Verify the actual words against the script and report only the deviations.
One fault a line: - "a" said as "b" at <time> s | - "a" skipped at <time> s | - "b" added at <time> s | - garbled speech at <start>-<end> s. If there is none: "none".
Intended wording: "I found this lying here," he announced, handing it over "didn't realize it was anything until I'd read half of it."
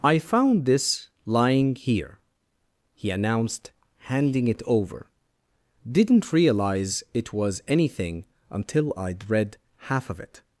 none